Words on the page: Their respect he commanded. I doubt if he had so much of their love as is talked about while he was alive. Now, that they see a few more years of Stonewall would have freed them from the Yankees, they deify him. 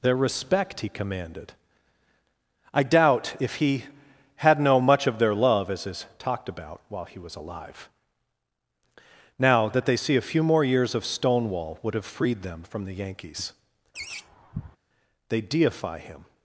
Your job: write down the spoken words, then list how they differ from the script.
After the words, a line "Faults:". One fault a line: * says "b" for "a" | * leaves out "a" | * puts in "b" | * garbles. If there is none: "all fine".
Their respect he commanded. I doubt if he had no much of their love as is talked about while he was alive. Now, that they see a few more years of Stonewall would have freed them from the Yankees, they deify him.
Faults:
* says "no" for "so"